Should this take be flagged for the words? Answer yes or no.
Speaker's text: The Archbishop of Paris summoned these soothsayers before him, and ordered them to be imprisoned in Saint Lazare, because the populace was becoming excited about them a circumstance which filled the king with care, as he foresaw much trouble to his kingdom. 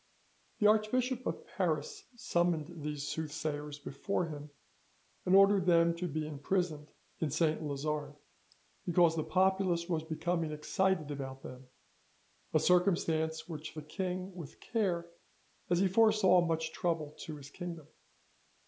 yes